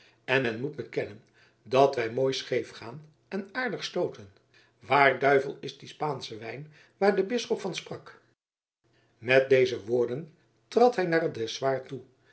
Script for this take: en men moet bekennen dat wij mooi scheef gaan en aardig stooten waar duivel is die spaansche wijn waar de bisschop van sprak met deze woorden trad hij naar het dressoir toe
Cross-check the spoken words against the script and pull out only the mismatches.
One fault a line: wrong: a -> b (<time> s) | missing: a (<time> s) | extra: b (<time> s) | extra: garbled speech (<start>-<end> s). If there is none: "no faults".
no faults